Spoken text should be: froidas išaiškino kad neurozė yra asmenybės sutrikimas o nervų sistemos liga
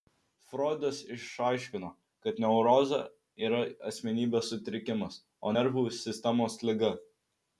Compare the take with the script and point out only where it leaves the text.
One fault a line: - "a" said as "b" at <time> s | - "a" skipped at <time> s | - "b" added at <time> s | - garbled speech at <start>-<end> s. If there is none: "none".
none